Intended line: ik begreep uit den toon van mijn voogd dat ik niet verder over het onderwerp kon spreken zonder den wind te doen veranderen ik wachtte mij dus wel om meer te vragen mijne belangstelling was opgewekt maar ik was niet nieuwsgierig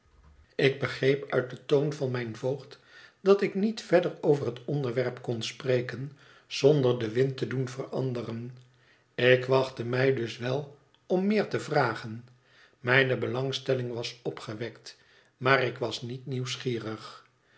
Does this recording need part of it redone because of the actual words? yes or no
no